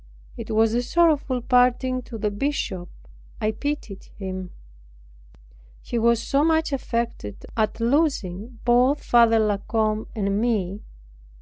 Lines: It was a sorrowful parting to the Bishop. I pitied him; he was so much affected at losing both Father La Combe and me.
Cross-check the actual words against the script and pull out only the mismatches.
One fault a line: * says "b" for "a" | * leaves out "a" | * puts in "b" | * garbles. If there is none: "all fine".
all fine